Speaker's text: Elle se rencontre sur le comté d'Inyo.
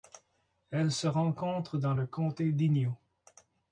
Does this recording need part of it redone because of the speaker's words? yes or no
yes